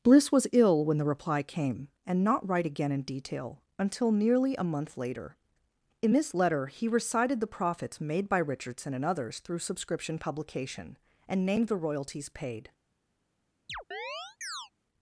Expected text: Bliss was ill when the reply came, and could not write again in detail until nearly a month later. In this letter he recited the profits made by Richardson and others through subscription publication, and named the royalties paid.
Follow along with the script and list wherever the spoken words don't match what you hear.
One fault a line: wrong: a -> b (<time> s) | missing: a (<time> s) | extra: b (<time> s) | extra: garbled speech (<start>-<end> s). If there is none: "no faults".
missing: could (2.2 s)